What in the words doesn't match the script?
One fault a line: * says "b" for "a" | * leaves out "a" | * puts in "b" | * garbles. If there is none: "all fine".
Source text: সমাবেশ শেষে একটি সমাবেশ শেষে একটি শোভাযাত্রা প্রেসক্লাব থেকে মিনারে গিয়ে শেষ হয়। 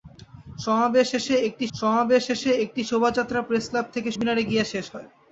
all fine